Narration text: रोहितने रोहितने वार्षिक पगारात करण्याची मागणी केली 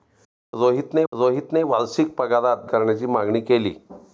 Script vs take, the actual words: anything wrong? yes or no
no